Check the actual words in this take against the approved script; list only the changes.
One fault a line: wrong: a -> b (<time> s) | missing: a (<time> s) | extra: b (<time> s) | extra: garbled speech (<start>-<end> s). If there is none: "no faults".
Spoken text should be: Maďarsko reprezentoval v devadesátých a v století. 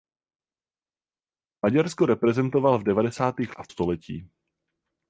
no faults